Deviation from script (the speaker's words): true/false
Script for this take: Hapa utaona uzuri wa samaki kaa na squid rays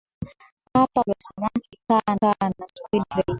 true